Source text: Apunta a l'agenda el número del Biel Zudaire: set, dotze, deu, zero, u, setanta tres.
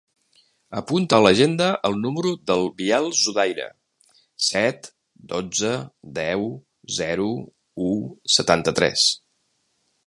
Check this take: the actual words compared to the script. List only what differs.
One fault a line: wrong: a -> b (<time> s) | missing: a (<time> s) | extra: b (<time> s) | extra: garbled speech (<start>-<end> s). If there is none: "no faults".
no faults